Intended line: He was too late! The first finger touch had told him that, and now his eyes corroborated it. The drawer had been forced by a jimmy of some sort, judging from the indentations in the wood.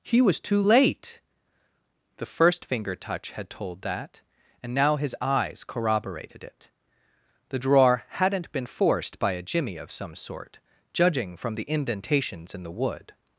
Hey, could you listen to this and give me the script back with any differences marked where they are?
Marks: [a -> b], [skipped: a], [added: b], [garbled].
He was too late! The first finger touch had told [skipped: him] that, and now his eyes corroborated it. The drawer [had -> hadn't] been forced by a jimmy of some sort, judging from the indentations in the wood.